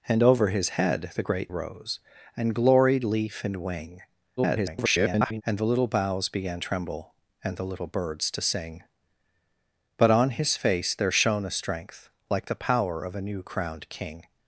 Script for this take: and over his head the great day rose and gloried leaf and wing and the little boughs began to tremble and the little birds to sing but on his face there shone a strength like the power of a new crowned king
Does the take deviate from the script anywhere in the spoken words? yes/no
yes